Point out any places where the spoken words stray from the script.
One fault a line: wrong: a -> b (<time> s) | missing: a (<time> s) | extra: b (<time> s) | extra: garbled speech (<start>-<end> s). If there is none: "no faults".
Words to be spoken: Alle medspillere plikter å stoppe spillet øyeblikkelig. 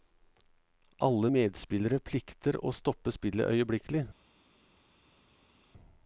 no faults